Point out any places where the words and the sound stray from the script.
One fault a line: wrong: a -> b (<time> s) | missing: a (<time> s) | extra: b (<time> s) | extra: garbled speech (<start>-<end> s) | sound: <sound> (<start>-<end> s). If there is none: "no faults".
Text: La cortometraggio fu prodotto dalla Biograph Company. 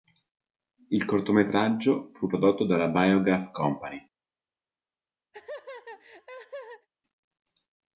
wrong: La -> Il (0.9 s)
sound: laugh (5.3-6.9 s)